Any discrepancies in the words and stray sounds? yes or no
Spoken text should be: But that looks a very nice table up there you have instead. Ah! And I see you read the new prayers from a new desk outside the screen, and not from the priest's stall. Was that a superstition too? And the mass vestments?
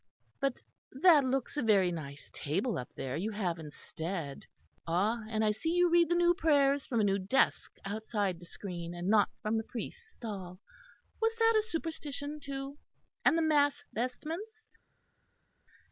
no